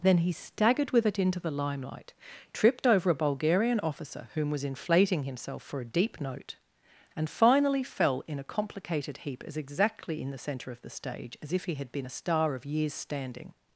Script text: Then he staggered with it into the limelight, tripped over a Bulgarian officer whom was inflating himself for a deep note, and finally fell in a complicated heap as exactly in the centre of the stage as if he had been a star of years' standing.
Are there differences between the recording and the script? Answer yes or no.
no